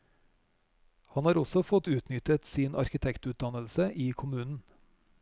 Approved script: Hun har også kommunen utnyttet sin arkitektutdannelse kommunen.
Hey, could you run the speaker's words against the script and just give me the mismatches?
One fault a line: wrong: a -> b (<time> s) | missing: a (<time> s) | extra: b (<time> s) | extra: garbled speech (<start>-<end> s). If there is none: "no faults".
wrong: Hun -> Han (1.1 s)
wrong: kommunen -> fått (1.7 s)
extra: i (3.9 s)